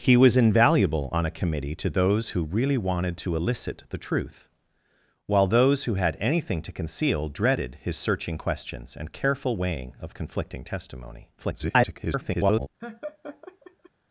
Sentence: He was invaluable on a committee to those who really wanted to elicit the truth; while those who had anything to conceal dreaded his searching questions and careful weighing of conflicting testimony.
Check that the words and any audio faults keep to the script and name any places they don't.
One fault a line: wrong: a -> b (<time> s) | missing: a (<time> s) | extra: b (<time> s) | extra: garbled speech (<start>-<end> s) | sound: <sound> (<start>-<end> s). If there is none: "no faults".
extra: garbled speech (11.4-12.7 s)
sound: laugh (12.8-13.9 s)